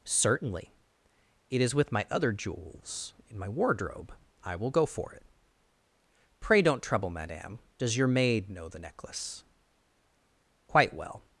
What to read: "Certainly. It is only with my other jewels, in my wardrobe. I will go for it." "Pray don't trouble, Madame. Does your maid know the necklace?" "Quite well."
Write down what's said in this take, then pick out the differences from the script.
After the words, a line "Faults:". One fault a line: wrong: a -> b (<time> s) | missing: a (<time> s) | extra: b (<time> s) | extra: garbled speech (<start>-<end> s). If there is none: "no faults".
"Certainly. It is with my other jewels, in my wardrobe. I will go for it." "Pray don't trouble, Madame. Does your maid know the necklace?" "Quite well."
Faults:
missing: only (1.8 s)